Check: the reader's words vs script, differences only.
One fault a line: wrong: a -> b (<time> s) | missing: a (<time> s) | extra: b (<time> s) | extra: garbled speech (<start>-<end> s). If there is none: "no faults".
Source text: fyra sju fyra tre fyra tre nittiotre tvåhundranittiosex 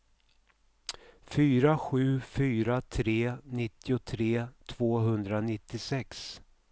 missing: fyra tre (3.4 s)